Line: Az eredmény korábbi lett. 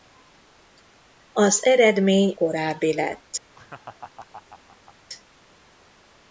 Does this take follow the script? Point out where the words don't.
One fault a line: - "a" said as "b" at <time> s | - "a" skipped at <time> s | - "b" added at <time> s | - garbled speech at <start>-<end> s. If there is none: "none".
none